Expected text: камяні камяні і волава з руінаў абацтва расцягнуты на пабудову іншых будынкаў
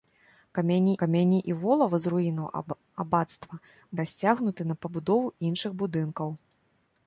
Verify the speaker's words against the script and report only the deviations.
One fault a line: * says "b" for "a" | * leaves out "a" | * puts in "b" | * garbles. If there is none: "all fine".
all fine